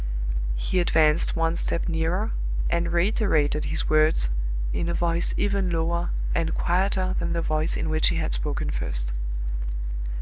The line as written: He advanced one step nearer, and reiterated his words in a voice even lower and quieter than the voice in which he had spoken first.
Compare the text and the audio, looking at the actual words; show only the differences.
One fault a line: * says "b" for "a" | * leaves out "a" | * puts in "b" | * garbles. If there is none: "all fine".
all fine